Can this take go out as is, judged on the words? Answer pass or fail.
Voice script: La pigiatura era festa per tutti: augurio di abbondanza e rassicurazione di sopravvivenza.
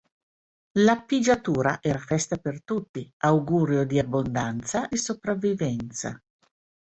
fail